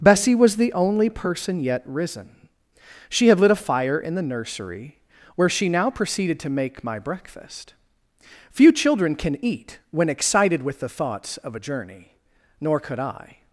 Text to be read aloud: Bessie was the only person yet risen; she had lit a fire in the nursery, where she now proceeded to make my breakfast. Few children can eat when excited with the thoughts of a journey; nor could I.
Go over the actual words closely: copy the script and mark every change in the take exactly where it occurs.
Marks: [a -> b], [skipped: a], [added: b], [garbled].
Bessie was the only person yet risen; she had lit a fire in the nursery, where she now proceeded to make my breakfast. Few children can eat when excited with the thoughts of a journey; nor could I.